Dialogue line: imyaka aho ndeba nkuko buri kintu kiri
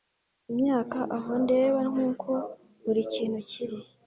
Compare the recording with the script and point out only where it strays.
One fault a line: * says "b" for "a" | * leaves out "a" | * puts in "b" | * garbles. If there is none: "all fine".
all fine